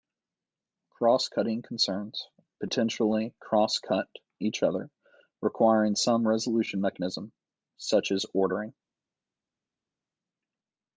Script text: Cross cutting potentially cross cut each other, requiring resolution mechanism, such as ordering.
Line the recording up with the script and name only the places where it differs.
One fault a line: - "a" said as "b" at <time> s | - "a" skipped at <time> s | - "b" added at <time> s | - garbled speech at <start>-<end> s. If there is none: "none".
- "concerns" added at 1.6 s
- "some" added at 6.0 s